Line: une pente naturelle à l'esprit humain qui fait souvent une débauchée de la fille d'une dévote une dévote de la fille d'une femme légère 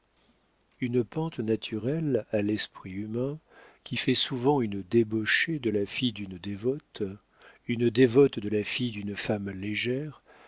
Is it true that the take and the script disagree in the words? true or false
false